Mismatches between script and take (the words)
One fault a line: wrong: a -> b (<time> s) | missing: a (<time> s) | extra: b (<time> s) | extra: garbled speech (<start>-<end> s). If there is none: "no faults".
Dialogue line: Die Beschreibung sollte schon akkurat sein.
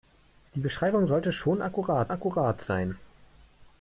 extra: akkurat (2.1 s)